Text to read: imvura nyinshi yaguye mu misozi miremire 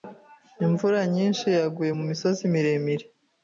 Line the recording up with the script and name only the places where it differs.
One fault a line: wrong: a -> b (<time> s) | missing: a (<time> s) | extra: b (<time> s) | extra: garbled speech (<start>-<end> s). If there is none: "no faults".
no faults